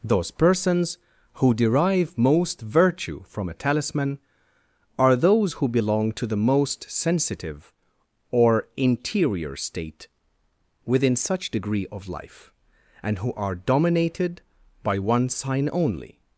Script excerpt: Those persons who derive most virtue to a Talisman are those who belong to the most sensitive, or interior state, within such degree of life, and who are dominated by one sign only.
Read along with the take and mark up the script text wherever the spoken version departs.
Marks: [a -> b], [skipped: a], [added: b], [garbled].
Those persons who derive most virtue [to -> from] a Talisman are those who belong to the most sensitive, or interior state, within such degree of life, and who are dominated by one sign only.